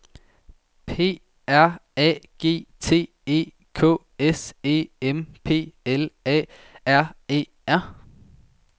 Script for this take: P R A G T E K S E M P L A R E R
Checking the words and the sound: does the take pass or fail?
pass